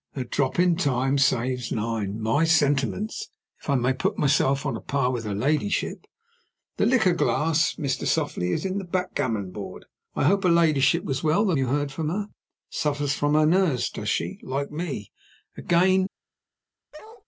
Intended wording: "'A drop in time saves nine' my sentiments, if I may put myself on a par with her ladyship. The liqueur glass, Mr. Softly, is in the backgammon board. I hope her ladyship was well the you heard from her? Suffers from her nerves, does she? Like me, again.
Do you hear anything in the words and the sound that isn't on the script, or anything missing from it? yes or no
yes